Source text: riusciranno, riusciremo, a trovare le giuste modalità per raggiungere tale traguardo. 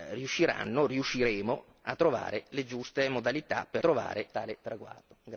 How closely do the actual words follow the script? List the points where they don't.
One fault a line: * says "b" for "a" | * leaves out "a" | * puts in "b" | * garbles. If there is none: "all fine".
* says "trovare" for "raggiungere"